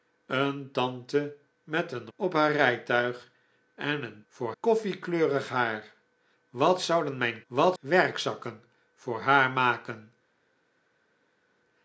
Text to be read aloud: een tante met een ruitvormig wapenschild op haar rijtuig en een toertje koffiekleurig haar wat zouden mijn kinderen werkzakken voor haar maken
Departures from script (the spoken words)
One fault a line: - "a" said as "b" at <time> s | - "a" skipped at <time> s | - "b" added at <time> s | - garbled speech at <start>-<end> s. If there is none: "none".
- "ruitvormig wapenschild" skipped at 2.1 s
- "toertje" said as "voor" at 4.3 s
- "kinderen" said as "wat" at 7.5 s